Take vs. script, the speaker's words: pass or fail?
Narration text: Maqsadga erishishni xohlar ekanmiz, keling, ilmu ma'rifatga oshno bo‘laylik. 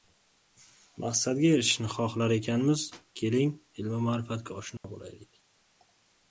pass